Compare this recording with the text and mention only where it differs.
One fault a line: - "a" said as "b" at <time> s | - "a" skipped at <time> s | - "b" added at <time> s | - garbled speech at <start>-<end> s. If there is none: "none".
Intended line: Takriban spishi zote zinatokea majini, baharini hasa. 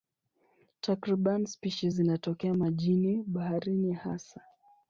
- "zote" skipped at 1.9 s